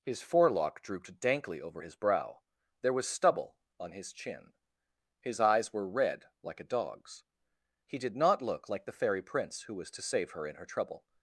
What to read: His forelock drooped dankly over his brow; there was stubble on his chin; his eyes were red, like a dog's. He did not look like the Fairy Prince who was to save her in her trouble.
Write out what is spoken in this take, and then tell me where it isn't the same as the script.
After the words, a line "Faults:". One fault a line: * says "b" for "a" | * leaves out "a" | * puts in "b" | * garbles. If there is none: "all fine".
His forelock drooped dankly over his brow; there was stubble on his chin; his eyes were red, like a dog's. He did not look like the Fairy Prince who was to save her in her trouble.
Faults:
all fine